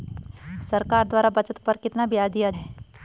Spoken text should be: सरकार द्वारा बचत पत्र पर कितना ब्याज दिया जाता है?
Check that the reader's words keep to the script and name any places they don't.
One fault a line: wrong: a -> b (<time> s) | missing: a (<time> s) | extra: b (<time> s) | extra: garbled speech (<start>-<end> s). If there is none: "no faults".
missing: पत्र (1.6 s)
missing: जाता (2.5 s)